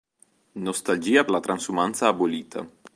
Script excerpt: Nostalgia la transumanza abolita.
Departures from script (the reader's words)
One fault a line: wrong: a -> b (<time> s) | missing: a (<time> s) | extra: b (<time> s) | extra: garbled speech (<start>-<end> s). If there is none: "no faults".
no faults